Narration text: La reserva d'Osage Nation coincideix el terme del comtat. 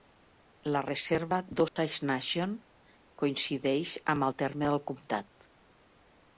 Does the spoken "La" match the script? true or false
true